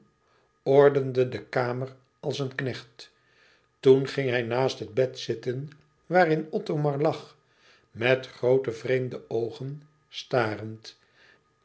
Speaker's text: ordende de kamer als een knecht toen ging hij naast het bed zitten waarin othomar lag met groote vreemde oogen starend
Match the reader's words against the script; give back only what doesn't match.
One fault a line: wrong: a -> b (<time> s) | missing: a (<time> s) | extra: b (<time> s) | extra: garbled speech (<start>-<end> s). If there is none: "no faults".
no faults